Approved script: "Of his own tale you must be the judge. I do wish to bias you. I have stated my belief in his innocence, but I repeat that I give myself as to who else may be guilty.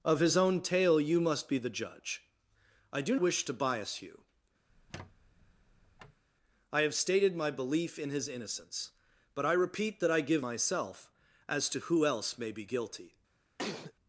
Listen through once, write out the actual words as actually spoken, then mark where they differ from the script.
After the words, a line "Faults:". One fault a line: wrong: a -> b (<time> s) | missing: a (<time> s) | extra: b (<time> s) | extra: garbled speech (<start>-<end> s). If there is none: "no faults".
"Of his own tale you must be the judge. I do wish to bias you. I have stated my belief in his innocence, but I repeat that I give myself as to who else may be guilty.
Faults:
no faults